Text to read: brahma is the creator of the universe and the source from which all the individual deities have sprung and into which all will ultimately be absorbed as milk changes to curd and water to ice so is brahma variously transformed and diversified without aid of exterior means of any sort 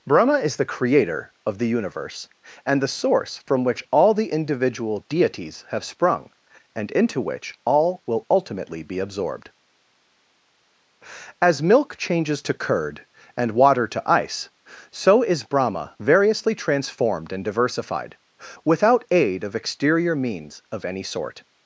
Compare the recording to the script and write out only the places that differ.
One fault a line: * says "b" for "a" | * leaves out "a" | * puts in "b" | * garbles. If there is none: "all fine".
all fine